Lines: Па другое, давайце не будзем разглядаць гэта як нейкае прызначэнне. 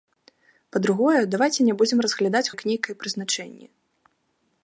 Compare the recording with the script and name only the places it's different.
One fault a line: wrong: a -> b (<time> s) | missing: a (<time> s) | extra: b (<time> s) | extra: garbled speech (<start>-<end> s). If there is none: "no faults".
missing: гэта (2.4 s)